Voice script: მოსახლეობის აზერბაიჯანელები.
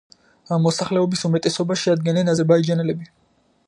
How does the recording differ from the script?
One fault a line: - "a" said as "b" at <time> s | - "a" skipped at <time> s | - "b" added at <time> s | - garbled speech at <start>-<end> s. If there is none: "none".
- "უმეტესობას შეადგენენ" added at 1.3 s